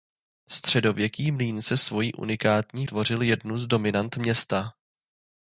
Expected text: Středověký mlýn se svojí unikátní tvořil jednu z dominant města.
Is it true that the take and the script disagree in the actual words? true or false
false